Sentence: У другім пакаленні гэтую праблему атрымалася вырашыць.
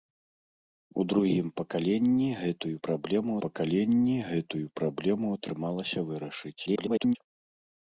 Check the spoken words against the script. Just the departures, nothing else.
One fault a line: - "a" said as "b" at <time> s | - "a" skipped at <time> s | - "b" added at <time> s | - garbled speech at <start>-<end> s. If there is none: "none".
- "пакаленні гэтую праблему" added at 3.5 s
- garbled speech at 6.7-7.2 s